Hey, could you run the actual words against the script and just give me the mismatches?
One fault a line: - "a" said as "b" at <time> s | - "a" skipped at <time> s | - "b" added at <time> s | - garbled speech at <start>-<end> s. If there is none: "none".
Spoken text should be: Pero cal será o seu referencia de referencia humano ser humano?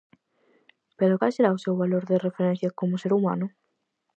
- "referencia" said as "valor" at 1.8 s
- "humano" said as "como" at 2.8 s